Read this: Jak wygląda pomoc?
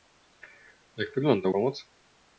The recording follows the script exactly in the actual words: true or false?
true